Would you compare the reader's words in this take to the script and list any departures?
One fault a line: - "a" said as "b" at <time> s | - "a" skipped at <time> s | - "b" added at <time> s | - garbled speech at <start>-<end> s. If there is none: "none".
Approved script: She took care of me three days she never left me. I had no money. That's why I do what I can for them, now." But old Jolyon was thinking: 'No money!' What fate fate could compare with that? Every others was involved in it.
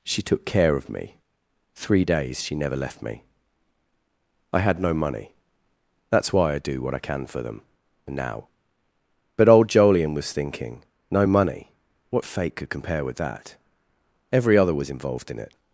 - "fate" skipped at 12.6 s
- "others" said as "other" at 14.6 s